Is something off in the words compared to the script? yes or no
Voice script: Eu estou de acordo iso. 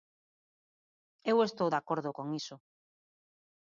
yes